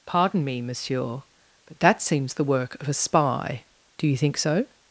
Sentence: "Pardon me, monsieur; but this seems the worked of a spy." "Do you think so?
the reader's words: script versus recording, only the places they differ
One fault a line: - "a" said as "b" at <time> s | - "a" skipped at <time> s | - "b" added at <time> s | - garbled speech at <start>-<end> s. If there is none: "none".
- "this" said as "that" at 1.8 s
- "worked" said as "work" at 2.4 s